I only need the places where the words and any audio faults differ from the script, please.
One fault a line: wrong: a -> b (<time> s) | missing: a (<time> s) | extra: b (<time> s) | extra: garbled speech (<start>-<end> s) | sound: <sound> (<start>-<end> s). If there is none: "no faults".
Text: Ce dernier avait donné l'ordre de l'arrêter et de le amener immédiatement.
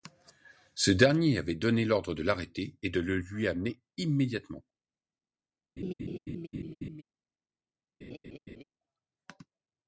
extra: lui (3.2 s)
sound: laugh (5.8-7.0 s)
sound: laugh (8.0-8.6 s)